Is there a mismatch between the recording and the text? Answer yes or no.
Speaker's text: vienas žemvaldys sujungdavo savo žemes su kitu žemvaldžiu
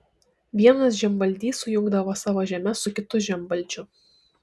no